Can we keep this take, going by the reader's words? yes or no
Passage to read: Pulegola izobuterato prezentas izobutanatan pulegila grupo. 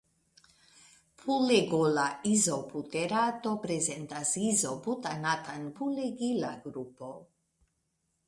yes